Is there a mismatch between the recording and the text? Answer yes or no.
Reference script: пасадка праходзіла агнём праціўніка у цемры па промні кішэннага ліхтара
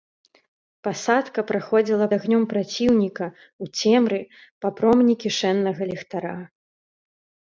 no